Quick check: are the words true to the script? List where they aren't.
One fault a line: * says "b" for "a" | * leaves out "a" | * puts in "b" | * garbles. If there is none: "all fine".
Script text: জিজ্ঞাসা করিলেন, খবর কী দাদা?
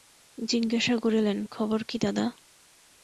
all fine